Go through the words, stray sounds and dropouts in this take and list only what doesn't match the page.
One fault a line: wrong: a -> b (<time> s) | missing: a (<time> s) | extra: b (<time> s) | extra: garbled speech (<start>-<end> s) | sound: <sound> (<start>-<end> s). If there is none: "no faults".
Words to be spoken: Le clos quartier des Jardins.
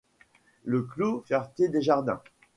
no faults